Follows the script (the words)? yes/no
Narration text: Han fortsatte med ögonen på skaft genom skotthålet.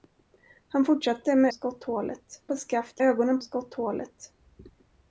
no